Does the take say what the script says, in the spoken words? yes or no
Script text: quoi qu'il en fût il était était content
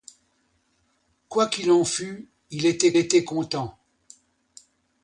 yes